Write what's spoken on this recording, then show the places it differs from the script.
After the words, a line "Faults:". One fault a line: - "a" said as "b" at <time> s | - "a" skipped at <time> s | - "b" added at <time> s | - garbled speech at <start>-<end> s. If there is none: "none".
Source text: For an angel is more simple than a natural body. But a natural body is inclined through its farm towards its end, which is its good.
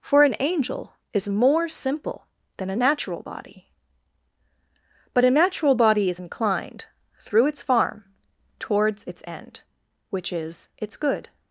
For an angel is more simple than a natural body. But a natural body is inclined through its farm towards its end, which is its good.
Faults:
none